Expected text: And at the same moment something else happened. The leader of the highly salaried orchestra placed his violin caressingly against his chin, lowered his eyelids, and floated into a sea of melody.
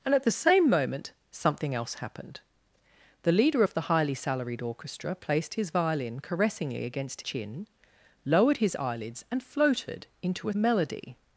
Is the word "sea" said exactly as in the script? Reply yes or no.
no